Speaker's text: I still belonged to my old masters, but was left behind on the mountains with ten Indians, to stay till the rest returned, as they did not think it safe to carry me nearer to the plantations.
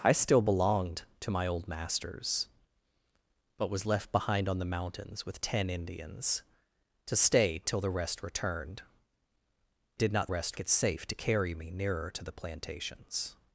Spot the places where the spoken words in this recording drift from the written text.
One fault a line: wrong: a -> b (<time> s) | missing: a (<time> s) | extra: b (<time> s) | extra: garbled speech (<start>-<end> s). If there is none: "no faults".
missing: as they (8.8 s)
wrong: think -> rest (10.3 s)